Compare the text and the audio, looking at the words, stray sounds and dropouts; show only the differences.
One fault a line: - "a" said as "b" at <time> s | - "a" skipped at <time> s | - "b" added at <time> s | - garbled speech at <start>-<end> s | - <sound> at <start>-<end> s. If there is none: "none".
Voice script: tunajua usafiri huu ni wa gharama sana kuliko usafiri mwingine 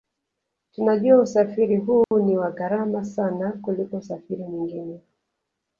- dropout at 2.0-2.1 s